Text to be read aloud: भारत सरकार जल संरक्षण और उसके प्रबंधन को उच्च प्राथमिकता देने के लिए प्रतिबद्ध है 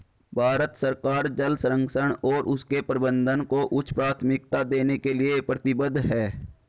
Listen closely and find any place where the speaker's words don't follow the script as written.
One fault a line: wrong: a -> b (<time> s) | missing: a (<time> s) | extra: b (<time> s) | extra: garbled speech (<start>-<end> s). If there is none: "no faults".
no faults